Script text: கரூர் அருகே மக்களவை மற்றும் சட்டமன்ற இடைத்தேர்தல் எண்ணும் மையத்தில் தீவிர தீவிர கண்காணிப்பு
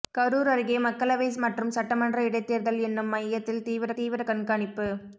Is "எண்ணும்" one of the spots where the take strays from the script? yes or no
no